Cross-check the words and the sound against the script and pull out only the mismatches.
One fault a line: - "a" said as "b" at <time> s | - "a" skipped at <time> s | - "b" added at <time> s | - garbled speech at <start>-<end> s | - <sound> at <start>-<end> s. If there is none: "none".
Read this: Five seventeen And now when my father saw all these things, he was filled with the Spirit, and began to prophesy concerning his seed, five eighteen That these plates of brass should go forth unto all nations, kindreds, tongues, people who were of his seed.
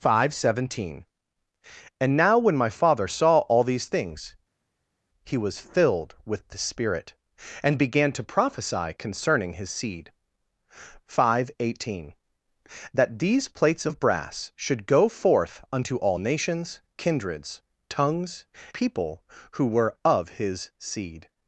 none